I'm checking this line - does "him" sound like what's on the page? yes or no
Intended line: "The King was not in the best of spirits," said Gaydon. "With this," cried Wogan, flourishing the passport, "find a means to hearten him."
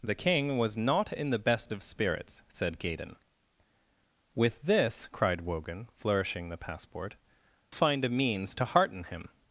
yes